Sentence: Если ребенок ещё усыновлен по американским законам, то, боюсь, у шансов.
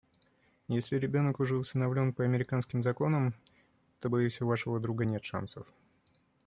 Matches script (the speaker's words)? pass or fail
fail